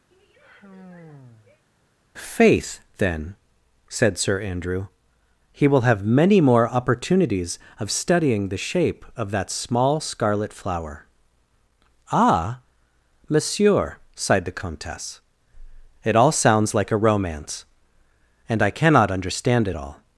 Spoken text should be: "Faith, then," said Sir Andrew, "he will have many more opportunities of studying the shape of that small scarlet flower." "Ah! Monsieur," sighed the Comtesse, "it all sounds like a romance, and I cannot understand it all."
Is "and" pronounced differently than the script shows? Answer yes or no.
no